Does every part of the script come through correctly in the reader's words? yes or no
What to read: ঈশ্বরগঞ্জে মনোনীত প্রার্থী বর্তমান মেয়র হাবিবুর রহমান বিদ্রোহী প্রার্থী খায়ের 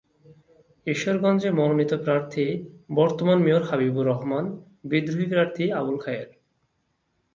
no